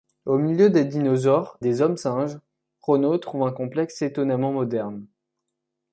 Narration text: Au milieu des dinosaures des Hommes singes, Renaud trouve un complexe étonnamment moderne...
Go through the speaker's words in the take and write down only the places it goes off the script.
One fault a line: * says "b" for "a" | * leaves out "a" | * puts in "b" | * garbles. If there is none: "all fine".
all fine